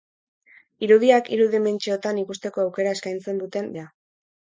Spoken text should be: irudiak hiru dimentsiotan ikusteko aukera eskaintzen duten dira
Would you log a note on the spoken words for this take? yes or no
no